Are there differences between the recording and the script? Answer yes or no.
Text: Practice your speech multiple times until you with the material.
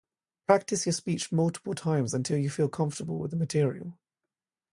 yes